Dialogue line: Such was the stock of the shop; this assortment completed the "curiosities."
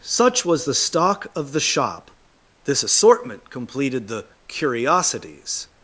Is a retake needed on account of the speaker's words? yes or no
no